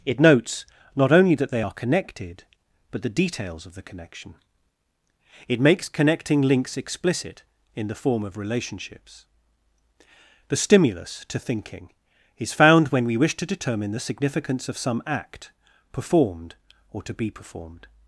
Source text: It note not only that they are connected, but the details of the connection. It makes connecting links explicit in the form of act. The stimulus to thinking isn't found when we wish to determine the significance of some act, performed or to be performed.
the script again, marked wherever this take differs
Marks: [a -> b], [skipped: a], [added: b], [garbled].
It [note -> notes] not only that they are connected, but the details of the connection. It makes connecting links explicit in the form of [act. -> relationships] The stimulus to thinking [isn't -> is] found when we wish to determine the significance of some act, performed or to be performed.